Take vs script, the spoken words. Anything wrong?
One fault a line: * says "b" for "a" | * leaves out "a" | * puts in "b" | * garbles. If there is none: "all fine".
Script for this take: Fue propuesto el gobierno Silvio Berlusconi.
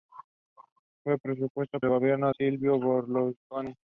all fine